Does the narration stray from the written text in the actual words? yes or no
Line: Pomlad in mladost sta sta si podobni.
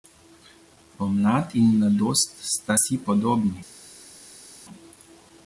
yes